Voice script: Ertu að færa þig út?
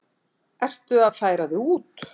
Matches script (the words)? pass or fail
pass